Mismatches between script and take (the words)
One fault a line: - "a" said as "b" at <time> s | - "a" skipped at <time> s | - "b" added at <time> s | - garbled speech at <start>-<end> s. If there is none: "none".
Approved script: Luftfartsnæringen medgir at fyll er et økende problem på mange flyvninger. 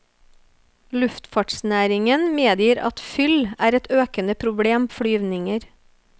- "på mange" skipped at 4.9 s